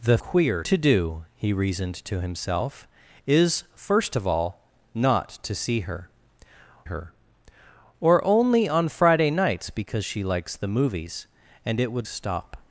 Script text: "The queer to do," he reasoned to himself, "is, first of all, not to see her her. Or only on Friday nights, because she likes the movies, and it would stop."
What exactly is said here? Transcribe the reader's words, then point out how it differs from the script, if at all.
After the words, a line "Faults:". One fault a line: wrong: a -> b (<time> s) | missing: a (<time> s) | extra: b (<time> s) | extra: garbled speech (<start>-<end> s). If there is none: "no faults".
"The queer to do," he reasoned to himself, "is, first of all, not to see her her. Or only on Friday nights, because she likes the movies, and it would stop."
Faults:
no faults